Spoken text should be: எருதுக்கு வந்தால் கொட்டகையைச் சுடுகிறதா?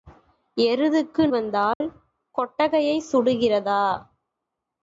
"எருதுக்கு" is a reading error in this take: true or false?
false